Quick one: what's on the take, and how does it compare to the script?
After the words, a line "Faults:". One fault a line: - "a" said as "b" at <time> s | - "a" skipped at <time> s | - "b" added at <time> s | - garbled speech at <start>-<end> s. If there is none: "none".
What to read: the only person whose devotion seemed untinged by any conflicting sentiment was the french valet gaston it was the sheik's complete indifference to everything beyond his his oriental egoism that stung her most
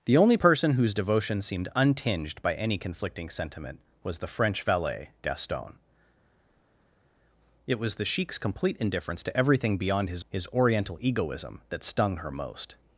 the only person whose devotion seemed untinged by any conflicting sentiment was the french valet gaston it was the sheik's complete indifference to everything beyond his his oriental egoism that stung her most
Faults:
none